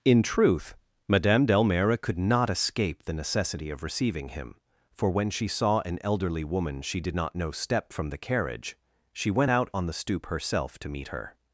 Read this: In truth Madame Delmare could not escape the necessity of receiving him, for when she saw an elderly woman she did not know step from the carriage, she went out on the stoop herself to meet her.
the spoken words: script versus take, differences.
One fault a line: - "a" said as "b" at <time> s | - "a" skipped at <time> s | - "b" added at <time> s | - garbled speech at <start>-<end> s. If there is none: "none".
none